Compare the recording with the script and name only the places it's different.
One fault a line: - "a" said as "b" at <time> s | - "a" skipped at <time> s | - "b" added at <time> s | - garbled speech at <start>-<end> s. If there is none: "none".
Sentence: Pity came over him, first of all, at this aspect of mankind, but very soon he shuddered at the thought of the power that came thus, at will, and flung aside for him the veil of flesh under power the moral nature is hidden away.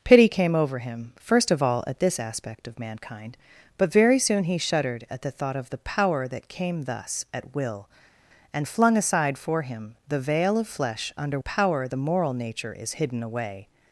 none